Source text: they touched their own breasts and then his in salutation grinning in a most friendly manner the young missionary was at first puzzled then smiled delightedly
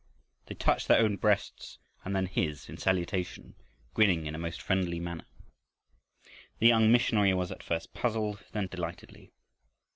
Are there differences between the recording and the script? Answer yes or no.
yes